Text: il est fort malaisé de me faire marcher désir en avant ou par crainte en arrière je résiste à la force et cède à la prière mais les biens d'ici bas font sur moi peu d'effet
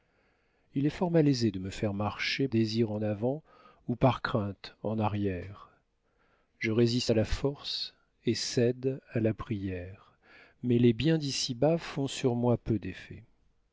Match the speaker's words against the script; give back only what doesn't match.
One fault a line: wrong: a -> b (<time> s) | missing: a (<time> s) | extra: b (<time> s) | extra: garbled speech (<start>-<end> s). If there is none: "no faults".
no faults